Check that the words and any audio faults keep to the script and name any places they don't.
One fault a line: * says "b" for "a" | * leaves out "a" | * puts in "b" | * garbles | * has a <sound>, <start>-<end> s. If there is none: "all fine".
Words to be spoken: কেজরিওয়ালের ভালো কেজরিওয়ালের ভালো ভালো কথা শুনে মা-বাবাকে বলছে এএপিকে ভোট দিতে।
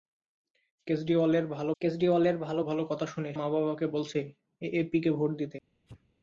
* has a sneeze, 5.9-6.1 s